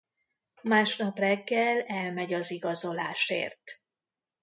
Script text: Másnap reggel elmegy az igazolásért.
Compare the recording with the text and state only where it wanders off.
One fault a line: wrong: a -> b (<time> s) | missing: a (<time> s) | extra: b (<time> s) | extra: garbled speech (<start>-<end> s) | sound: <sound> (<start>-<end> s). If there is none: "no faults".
no faults